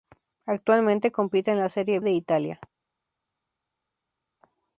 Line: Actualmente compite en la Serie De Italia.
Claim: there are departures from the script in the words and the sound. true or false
false